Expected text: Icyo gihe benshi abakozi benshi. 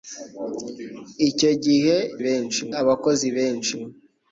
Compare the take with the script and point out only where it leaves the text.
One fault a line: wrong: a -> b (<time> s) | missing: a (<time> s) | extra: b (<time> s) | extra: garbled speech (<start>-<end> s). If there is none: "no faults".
no faults